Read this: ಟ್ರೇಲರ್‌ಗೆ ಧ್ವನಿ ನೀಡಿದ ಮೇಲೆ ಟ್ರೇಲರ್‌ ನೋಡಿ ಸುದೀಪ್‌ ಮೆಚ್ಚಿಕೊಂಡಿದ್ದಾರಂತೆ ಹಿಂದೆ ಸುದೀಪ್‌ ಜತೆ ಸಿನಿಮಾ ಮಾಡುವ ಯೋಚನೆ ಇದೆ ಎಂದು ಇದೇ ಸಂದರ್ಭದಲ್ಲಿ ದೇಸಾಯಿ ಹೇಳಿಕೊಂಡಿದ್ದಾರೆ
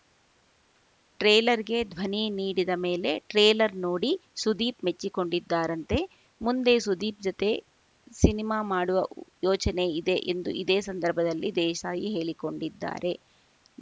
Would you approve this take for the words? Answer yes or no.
no